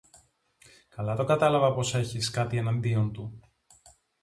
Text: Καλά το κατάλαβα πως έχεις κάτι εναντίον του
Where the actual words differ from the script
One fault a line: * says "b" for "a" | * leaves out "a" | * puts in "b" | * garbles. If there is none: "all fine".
all fine